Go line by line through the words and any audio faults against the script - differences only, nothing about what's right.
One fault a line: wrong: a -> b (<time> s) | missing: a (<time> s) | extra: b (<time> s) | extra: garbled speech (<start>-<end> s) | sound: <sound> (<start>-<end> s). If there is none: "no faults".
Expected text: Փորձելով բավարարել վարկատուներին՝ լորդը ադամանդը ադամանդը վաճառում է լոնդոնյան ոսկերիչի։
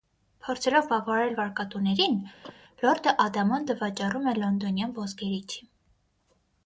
sound: cough (2.4-2.6 s)
missing: ադամանդը (3.8 s)